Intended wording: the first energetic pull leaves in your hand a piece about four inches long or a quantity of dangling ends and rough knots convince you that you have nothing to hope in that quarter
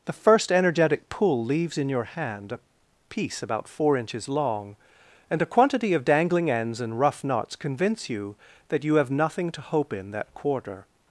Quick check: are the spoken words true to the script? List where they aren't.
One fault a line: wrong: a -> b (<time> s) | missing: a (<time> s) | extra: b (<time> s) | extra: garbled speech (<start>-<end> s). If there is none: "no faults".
wrong: or -> and (5.3 s)